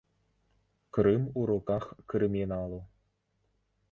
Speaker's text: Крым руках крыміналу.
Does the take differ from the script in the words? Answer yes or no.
yes